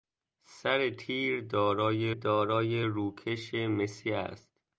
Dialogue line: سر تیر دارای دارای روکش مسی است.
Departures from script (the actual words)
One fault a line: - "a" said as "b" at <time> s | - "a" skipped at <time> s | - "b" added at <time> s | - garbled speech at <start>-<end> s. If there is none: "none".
none